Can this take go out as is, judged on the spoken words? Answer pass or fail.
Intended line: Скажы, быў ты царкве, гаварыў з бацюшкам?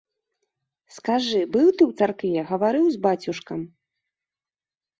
fail